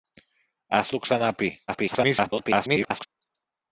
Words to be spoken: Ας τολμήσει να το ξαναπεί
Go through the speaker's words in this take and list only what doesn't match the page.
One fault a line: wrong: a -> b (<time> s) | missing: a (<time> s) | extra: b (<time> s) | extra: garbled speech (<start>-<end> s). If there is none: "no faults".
missing: τολμήσει να (0.9 s)
extra: garbled speech (1.7-3.1 s)